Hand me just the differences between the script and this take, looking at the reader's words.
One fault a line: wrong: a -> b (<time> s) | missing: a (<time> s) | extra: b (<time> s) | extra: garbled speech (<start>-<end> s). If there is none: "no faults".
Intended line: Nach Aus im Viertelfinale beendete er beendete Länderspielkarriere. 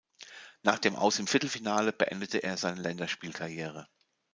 extra: dem (0.8 s)
wrong: beendete -> seine (2.6 s)